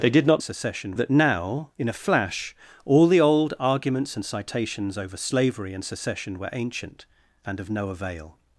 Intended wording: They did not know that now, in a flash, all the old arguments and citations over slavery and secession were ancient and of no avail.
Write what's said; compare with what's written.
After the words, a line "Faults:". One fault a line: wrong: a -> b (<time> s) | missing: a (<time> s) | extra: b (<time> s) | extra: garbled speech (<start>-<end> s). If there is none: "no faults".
They did not secession that now, in a flash, all the old arguments and citations over slavery and secession were ancient and of no avail.
Faults:
wrong: know -> secession (0.4 s)